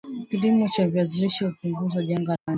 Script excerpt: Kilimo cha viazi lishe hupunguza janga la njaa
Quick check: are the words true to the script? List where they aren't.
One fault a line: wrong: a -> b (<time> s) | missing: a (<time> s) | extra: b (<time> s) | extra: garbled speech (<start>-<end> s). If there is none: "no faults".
missing: la (2.4 s)